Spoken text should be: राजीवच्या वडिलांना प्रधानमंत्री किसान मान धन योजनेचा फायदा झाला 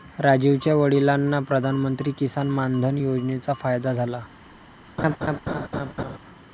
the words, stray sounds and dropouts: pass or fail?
fail